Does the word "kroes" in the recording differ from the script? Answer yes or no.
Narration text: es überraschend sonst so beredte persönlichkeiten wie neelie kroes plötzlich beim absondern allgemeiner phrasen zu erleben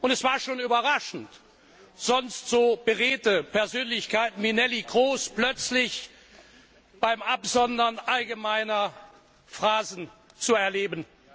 no